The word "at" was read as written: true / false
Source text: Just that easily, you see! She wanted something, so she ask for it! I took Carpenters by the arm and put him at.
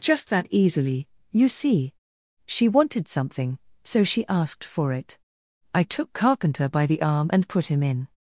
false